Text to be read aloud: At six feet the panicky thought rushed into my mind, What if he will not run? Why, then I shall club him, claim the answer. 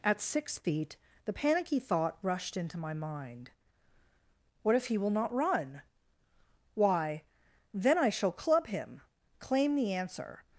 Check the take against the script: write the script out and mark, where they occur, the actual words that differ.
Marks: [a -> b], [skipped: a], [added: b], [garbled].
At six feet the panicky thought rushed into my mind, What if he will not run? Why, then I shall club him, claim the answer.